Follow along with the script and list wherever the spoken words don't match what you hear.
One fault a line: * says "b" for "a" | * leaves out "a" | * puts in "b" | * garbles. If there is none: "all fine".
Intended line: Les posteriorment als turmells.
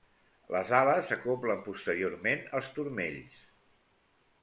* puts in "ales s'acoblen"